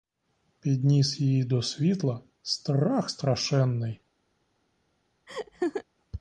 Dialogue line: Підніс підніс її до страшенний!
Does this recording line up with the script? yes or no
no